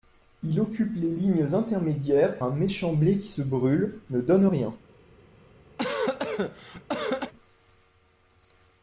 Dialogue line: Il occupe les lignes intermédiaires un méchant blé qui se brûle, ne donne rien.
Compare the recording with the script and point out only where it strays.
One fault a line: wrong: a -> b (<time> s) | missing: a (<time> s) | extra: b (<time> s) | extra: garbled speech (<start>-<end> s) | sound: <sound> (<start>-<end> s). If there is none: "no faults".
sound: cough (5.8-7.3 s)